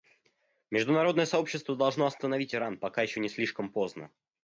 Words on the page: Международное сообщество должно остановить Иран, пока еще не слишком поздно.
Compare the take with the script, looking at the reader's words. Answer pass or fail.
pass